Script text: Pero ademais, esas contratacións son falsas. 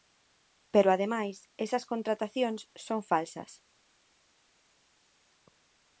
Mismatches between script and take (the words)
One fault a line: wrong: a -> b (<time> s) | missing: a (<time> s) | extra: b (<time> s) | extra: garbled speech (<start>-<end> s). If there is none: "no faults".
no faults